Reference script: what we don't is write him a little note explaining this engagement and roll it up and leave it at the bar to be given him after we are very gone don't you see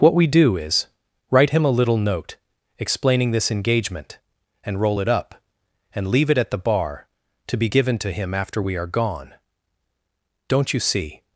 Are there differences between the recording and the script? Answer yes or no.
yes